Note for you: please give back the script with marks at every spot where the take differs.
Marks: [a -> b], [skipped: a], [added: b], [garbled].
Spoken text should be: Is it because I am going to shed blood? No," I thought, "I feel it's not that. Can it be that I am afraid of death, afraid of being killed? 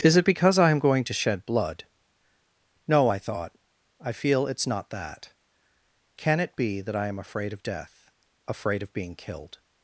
Is it because I am going to shed blood? No," I thought, "I feel it's not that. Can it be that I am afraid of death, afraid of being killed?